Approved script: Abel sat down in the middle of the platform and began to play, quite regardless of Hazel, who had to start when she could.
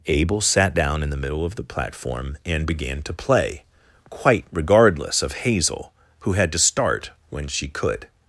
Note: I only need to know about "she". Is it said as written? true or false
true